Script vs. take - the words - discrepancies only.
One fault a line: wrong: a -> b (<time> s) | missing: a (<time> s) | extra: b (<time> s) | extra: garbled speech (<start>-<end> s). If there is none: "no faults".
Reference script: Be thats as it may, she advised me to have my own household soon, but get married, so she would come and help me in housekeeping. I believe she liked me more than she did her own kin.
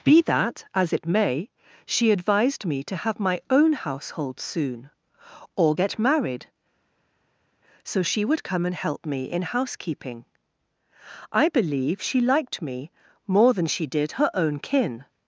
wrong: thats -> that (0.2 s)
wrong: but -> or (5.5 s)